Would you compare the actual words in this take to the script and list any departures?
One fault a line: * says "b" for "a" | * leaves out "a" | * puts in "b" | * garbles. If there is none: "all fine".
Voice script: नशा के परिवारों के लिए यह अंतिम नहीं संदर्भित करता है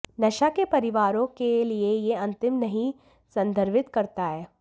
all fine